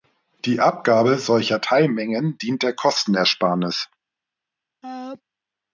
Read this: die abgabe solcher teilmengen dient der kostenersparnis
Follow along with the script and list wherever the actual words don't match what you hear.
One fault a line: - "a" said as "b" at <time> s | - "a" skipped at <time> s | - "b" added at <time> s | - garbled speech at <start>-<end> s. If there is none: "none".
none